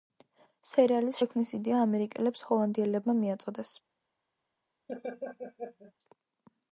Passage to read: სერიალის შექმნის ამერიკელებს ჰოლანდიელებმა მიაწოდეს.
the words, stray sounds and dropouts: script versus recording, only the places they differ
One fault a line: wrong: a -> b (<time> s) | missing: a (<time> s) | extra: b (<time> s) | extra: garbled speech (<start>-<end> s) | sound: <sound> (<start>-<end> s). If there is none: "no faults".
extra: იდეა (1.6 s)
sound: laugh (4.9-5.9 s)